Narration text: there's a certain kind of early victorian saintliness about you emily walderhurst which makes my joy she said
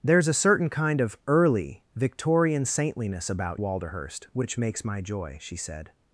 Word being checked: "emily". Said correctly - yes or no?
no